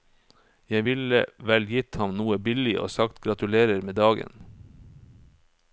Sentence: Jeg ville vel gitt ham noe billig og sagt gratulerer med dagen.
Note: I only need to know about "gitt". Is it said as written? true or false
true